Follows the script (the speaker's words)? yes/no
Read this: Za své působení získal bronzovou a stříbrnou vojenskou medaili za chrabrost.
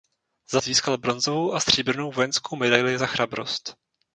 no